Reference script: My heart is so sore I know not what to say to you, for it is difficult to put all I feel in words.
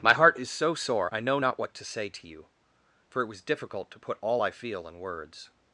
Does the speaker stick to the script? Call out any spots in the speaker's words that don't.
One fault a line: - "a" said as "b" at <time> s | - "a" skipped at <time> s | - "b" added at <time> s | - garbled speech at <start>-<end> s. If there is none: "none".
- "is" said as "was" at 3.3 s